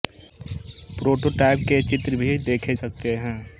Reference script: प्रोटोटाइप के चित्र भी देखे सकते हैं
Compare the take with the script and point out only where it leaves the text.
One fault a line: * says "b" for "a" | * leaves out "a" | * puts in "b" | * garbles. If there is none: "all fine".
all fine